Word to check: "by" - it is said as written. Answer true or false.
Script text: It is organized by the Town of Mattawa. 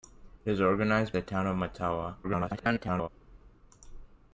false